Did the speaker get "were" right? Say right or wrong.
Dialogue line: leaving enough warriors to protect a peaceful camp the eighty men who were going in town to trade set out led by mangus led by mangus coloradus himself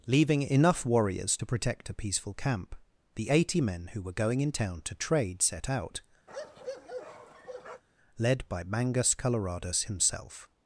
right